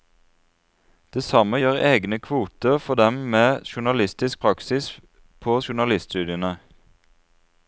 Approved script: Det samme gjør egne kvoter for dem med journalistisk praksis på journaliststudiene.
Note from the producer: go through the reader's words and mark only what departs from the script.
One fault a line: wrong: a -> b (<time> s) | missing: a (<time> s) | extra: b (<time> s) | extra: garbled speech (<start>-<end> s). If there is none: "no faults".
no faults